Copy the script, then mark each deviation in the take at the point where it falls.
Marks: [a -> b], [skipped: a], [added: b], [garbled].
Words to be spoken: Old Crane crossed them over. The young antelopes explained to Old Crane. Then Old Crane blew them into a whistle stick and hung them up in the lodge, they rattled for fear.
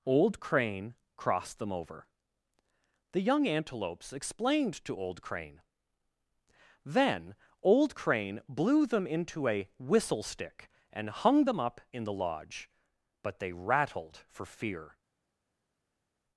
Old Crane crossed them over. The young antelopes explained to Old Crane. Then Old Crane blew them into a whistle stick and hung them up in the lodge, [added: but] they rattled for fear.